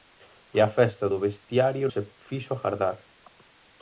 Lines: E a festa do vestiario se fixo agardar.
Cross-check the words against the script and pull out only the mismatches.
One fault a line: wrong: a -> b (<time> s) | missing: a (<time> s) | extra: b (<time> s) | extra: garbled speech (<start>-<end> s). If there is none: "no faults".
no faults